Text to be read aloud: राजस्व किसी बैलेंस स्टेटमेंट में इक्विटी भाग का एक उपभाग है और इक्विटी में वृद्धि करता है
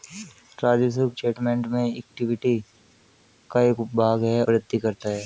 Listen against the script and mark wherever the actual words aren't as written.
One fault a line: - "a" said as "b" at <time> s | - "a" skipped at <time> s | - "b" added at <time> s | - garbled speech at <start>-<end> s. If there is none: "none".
- "किसी बैलेंस" skipped at 1.1 s
- "भाग" skipped at 2.6 s
- "और इक्विटी में" skipped at 4.4 s